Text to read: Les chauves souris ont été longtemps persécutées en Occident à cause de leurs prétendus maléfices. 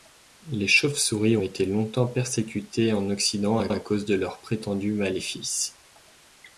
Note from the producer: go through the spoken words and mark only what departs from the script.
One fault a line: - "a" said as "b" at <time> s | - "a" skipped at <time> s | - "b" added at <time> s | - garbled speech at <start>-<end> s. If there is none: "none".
- "ont" skipped at 1.4 s
- "à" added at 3.7 s